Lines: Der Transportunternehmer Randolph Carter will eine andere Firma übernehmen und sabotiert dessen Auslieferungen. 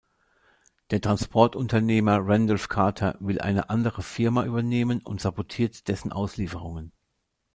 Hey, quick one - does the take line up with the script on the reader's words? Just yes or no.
yes